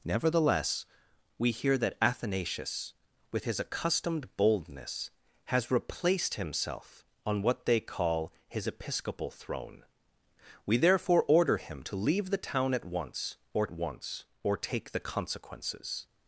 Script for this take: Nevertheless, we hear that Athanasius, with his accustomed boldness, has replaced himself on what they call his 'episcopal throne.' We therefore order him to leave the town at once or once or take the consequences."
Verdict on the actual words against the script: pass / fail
pass